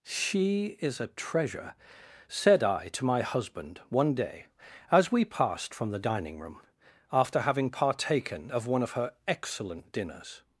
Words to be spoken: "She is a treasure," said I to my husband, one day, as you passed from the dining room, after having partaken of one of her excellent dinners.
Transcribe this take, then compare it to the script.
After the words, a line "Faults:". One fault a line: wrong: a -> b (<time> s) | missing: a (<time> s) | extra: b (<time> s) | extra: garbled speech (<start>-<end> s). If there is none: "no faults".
"She is a treasure," said I to my husband, one day, as we passed from the dining room, after having partaken of one of her excellent dinners.
Faults:
wrong: you -> we (5.1 s)